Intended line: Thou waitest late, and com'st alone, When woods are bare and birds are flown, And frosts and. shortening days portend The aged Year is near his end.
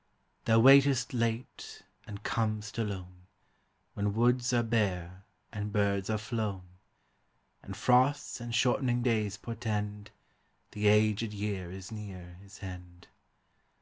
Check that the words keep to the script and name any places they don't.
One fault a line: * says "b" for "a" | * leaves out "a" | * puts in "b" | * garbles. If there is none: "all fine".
all fine